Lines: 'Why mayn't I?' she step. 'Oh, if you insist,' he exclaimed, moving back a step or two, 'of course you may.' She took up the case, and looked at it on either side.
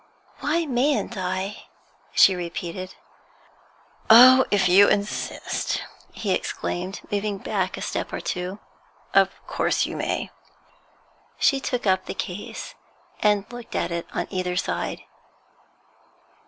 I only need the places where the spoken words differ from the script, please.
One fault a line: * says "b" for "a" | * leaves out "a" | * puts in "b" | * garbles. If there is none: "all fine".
* says "repeated" for "step"